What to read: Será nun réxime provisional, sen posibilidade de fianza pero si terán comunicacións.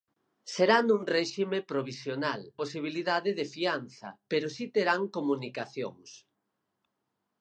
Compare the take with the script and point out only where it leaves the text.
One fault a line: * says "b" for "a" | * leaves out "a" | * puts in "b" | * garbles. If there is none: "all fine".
* leaves out "sen"